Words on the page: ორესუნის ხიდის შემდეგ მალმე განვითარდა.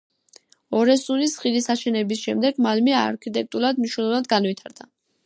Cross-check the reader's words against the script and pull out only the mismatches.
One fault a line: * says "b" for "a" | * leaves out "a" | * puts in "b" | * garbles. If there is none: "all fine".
* puts in "აშენების"
* puts in "არქიტექტურულად მნიშვნელოვნად"